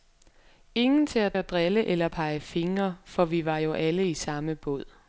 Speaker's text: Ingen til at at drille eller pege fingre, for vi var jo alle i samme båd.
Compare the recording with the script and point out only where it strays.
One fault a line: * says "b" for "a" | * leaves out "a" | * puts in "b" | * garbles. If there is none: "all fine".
all fine